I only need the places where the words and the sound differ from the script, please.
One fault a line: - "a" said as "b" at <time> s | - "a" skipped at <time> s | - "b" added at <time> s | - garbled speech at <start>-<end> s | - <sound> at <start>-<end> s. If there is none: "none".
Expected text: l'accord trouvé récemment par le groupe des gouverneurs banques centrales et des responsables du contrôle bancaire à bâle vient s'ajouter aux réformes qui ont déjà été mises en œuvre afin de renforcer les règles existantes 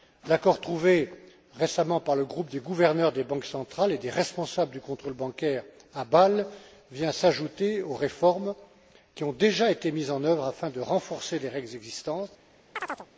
- "des" added at 3.1 s
- chirp at 12.8-13.1 s